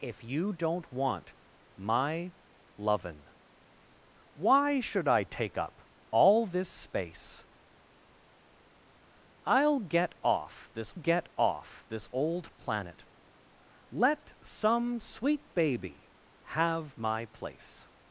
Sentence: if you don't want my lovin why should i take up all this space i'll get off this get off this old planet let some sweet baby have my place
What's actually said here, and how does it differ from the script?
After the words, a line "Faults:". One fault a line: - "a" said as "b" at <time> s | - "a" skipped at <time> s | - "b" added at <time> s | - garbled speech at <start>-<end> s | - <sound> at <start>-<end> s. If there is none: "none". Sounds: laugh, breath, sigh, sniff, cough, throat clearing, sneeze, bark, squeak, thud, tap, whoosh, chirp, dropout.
if you don't want my lovin why should i take up all this space i'll get off this get off this old planet let some sweet baby have my place
Faults:
none